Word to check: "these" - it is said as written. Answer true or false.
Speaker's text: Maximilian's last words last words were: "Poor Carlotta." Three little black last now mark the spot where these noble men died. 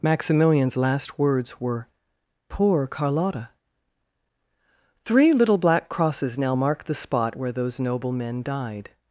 false